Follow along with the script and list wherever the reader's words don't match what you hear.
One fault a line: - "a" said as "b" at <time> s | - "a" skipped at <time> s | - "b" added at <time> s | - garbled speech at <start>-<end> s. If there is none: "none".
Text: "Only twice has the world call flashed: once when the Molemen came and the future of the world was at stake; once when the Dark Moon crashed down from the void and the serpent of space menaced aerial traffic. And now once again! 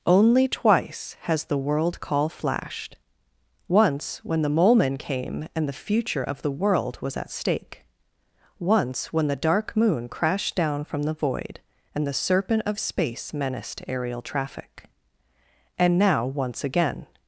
none